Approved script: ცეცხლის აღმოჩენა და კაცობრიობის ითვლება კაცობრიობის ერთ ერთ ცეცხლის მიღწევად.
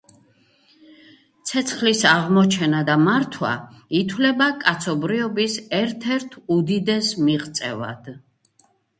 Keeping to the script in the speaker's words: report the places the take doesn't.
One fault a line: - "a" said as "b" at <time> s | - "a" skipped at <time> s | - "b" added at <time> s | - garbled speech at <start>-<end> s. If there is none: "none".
- "კაცობრიობის" said as "მართვა" at 3.1 s
- "ცეცხლის" said as "უდიდეს" at 6.6 s